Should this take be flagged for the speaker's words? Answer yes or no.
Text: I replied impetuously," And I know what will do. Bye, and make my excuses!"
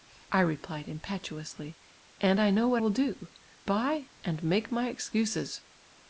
no